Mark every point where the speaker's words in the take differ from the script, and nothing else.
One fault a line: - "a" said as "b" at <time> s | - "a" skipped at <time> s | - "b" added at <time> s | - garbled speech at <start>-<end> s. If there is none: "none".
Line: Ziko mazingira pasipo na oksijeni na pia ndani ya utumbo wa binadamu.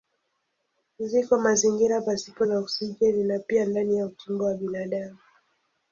none